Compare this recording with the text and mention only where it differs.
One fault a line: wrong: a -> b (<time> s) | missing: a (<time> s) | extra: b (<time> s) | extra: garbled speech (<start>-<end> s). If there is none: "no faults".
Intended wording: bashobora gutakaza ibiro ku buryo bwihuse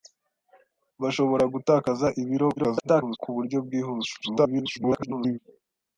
extra: garbled speech (2.6-3.2 s)
extra: garbled speech (4.2-5.4 s)